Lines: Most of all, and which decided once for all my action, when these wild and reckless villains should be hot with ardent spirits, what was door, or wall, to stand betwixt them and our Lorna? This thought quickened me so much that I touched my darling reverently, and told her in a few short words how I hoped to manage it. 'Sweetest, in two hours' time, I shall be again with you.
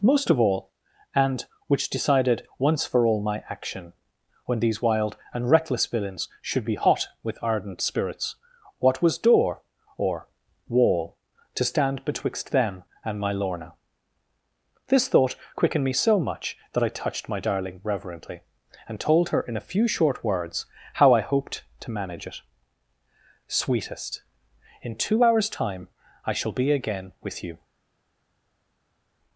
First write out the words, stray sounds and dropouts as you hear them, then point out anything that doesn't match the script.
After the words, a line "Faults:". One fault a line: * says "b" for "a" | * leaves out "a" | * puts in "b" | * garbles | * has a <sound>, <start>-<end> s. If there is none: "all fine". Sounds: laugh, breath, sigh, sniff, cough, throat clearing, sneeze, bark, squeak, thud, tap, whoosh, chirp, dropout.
Most of all, and which decided once for all my action, when these wild and reckless villains should be hot with ardent spirits, what was door, or wall, to stand betwixt them and my Lorna? This thought quickened me so much that I touched my darling reverently, and told her in a few short words how I hoped to manage it. 'Sweetest, in two hours' time, I shall be again with you.
Faults:
* says "my" for "our"